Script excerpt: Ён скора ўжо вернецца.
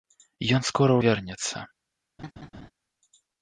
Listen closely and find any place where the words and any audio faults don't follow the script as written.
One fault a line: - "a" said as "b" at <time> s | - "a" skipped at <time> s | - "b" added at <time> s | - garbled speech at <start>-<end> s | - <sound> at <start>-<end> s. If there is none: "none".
- "ўжо" skipped at 0.9 s
- laugh at 2.2-2.7 s